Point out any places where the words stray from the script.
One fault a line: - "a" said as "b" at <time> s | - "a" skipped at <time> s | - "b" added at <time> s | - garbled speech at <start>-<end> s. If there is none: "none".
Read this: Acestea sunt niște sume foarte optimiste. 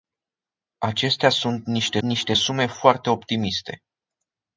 - "niște" added at 2.0 s